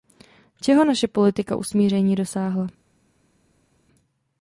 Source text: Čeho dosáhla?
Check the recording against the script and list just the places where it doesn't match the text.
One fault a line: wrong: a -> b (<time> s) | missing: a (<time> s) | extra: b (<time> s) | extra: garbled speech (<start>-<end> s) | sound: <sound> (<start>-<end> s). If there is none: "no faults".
extra: naše politika usmíření (0.8 s)